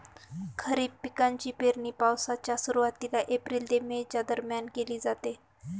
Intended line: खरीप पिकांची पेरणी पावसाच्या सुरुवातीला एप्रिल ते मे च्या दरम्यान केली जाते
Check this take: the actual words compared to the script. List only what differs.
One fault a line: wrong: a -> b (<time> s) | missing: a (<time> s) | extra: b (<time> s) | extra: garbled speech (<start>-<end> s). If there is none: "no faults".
no faults